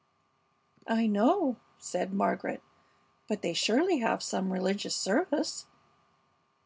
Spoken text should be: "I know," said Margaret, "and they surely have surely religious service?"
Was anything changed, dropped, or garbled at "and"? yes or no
yes